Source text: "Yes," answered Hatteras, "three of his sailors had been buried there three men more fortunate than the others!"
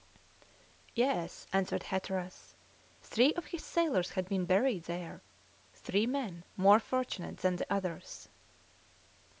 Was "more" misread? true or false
false